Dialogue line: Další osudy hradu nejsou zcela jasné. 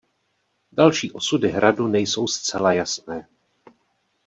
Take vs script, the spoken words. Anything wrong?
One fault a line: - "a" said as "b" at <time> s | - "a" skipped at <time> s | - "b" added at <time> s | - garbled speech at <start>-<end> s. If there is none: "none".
none